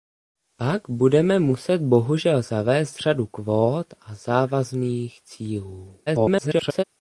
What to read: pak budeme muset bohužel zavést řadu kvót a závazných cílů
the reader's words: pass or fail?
fail